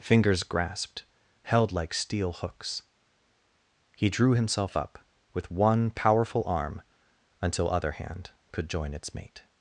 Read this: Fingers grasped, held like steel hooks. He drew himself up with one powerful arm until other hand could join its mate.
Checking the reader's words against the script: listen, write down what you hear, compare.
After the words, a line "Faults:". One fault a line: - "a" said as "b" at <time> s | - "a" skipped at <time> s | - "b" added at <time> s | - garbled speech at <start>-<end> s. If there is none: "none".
Fingers grasped, held like steel hooks. He drew himself up with one powerful arm until other hand could join its mate.
Faults:
none